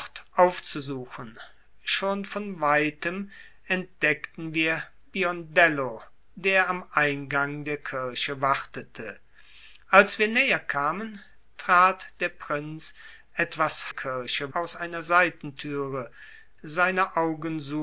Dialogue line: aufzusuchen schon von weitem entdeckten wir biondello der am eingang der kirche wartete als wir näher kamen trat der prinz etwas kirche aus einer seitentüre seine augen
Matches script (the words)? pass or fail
pass